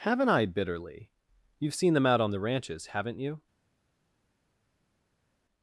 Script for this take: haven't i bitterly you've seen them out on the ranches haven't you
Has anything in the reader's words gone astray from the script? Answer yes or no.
no